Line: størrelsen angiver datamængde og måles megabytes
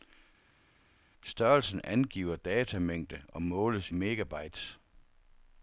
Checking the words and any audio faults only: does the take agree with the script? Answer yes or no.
yes